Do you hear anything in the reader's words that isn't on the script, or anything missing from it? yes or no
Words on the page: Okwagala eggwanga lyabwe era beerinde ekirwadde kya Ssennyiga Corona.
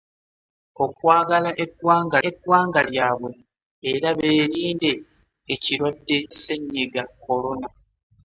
yes